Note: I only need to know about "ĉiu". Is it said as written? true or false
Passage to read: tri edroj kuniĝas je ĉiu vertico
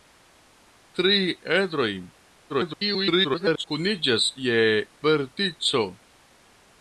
false